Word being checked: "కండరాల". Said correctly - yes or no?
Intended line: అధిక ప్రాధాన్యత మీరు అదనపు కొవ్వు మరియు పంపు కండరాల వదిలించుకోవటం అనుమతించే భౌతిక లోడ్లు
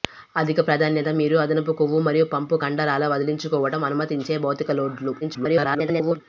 yes